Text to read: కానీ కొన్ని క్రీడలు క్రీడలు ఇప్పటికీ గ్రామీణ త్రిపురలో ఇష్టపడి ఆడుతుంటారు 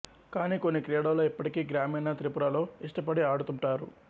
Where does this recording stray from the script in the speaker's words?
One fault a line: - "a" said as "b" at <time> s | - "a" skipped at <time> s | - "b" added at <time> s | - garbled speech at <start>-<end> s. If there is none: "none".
- "క్రీడలు" skipped at 1.2 s